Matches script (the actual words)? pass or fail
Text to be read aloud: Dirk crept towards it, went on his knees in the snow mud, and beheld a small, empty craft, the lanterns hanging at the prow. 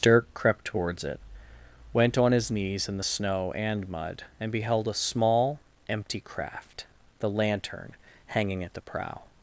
fail